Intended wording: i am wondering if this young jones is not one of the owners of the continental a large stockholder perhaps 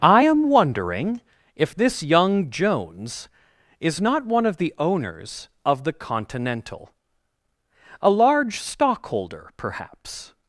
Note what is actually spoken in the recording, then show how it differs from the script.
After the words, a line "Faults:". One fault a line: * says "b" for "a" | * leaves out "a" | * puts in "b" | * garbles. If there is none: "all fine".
i am wondering if this young jones is not one of the owners of the continental a large stockholder perhaps
Faults:
all fine